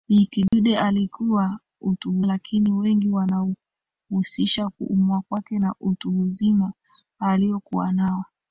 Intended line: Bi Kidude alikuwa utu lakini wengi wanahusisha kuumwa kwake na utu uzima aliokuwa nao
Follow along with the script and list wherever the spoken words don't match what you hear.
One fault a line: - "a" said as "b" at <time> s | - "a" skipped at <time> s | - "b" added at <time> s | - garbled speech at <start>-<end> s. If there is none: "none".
none